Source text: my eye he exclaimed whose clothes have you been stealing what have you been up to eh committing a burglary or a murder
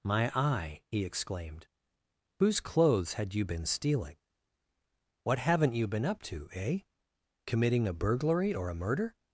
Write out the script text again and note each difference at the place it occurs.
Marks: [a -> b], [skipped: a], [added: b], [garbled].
my eye he exclaimed whose clothes [have -> had] you been stealing what [have -> haven't] you been up to eh committing a burglary or a murder